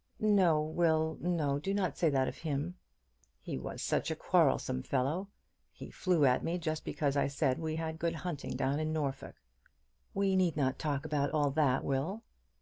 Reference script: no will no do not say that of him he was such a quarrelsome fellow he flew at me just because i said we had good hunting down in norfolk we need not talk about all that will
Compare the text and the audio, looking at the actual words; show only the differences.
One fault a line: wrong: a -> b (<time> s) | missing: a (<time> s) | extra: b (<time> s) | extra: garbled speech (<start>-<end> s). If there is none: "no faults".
no faults